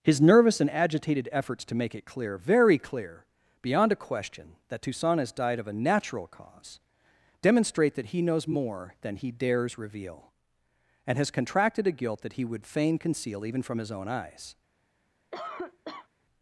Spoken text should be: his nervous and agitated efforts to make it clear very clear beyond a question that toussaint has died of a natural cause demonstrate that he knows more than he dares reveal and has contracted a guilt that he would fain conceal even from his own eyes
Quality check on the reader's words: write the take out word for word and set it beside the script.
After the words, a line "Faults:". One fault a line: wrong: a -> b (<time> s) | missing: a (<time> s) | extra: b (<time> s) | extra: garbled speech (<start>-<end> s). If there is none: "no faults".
his nervous and agitated efforts to make it clear very clear beyond a question that toussaint has died of a natural cause demonstrate that he knows more than he dares reveal and has contracted a guilt that he would fain conceal even from his own eyes
Faults:
no faults